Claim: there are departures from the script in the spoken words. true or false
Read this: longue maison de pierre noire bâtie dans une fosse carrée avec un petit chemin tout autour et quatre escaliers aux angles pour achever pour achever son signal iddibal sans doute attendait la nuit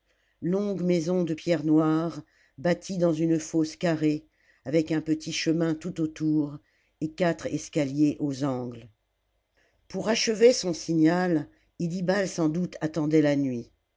true